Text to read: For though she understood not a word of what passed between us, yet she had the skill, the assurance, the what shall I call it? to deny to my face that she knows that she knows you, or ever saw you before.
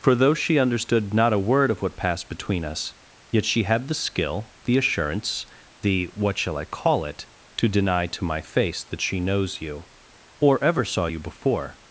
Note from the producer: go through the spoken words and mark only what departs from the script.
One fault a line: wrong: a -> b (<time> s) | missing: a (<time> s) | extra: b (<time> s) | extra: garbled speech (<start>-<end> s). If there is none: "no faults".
missing: that she knows (9.6 s)